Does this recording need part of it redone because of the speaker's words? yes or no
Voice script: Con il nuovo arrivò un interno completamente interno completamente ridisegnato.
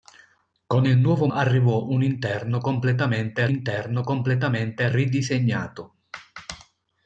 no